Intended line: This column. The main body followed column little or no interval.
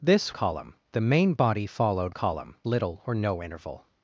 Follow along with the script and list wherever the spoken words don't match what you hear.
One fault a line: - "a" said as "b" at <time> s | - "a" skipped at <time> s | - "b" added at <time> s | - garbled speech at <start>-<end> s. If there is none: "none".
none